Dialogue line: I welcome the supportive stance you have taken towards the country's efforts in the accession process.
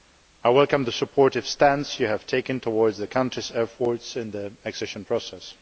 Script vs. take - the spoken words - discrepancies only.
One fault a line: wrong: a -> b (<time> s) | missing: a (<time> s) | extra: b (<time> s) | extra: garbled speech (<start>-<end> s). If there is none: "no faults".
no faults